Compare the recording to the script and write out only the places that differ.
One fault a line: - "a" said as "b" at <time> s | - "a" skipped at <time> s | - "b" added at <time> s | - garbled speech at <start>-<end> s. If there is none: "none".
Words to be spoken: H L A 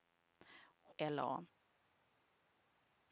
none